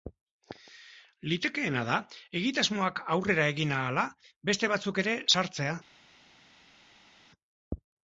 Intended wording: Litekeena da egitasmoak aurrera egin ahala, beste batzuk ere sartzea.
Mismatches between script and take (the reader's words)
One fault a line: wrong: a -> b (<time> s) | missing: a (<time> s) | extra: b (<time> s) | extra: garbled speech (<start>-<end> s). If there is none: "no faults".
no faults